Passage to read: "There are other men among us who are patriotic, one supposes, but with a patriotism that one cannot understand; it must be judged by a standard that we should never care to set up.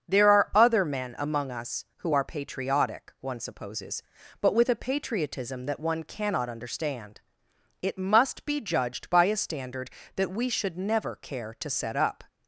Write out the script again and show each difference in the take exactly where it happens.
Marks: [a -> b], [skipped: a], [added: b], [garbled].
"There are other men among us who are patriotic, one supposes, but with a patriotism that one cannot understand; it must be judged by a standard that we should never care to set up.